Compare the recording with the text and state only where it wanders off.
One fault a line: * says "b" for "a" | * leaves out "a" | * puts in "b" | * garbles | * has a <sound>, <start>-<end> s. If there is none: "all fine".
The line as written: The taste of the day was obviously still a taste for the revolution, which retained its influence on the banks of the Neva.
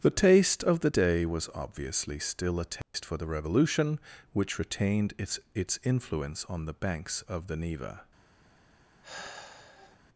* has a dropout, 2.8-2.9 s
* puts in "its"
* has a sigh, 9.0-10.0 s